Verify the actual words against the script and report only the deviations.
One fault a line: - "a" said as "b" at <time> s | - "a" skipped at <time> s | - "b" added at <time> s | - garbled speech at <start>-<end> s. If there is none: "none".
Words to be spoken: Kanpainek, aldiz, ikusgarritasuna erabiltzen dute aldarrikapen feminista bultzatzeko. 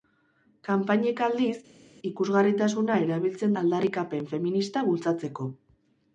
- "dute" skipped at 3.6 s